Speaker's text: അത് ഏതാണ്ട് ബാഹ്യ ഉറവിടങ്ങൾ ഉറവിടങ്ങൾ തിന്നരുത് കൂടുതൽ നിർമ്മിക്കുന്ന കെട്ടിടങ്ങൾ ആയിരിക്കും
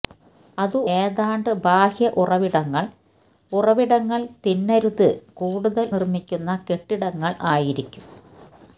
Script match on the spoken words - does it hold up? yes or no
yes